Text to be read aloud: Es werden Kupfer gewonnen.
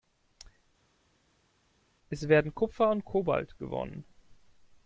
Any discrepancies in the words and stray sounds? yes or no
yes